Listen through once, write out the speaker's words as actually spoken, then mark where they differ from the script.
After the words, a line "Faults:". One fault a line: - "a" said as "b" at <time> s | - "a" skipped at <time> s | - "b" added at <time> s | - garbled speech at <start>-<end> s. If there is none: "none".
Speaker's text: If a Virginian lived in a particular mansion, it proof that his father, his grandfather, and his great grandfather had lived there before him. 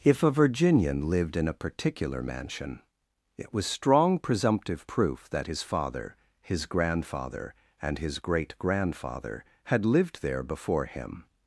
If a Virginian lived in a particular mansion, it was strong presumptive proof that his father, his grandfather, and his great grandfather had lived there before him.
Faults:
- "was strong presumptive" added at 3.5 s